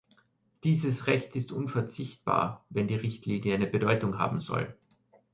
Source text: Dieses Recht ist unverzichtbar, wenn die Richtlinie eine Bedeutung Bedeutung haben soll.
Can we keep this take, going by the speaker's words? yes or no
no